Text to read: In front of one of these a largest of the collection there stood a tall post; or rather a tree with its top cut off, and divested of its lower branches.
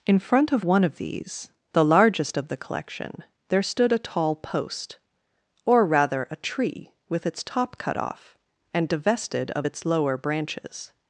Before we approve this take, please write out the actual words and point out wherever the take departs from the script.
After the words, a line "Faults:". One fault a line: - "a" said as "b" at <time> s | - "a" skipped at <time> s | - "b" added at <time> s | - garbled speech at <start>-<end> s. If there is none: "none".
In front of one of these the largest of the collection there stood a tall post; or rather a tree with its top cut off, and divested of its lower branches.
Faults:
- "a" said as "the" at 1.7 s